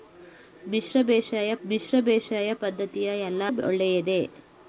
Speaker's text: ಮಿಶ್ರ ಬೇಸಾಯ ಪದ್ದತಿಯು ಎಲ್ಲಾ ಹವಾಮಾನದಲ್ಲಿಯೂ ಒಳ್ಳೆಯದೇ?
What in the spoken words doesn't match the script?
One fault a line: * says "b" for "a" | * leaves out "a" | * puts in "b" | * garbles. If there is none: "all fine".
* puts in "ಮಿಶ್ರ ಬೇಸಾಯ"
* leaves out "ಹವಾಮಾನದಲ್ಲಿಯೂ"